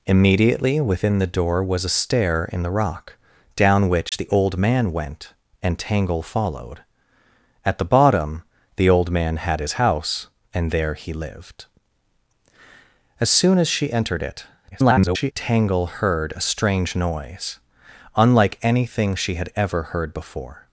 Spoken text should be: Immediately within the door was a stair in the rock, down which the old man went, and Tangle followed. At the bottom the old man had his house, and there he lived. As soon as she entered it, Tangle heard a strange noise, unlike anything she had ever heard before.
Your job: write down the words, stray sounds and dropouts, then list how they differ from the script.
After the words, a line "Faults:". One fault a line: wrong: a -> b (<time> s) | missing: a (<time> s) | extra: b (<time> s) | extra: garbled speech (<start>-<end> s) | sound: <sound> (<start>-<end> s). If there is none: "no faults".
Immediately within the door was a stair in the rock, down which the old man went, and Tangle followed. At the bottom the old man had his house, and there he lived. As soon as she entered it, [garbled] Tangle heard a strange noise, unlike anything she had ever heard before.
Faults:
sound: dropout (4.1-4.1 s)
extra: garbled speech (14.7-15.3 s)